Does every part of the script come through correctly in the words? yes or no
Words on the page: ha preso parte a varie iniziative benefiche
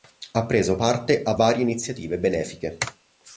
yes